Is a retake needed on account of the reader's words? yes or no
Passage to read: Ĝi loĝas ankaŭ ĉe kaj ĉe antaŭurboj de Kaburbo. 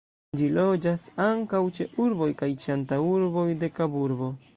yes